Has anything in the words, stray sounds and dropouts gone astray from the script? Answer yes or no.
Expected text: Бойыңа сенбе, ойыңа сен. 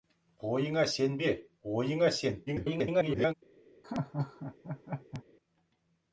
yes